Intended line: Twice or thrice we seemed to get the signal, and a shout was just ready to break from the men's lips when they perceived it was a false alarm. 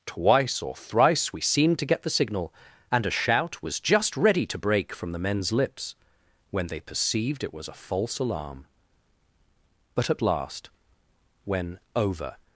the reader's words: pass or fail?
fail